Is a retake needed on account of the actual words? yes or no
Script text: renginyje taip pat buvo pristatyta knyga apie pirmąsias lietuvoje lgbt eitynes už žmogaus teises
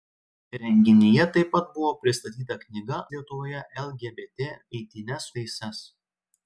yes